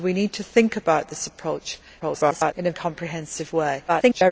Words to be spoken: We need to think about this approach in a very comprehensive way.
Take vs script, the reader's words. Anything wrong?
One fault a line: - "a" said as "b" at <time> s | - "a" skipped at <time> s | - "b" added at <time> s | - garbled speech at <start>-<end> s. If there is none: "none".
- garbled speech at 2.0-2.5 s
- "very" skipped at 2.7 s
- garbled speech at 3.9-4.3 s